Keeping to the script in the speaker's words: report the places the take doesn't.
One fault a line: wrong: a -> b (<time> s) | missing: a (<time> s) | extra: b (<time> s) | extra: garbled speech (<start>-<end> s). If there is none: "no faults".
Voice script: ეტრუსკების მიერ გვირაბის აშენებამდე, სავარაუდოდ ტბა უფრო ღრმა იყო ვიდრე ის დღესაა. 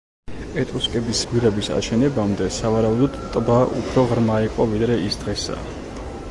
missing: მიერ (1.2 s)